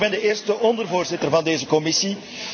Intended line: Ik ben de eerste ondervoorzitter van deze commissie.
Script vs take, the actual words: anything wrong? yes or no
no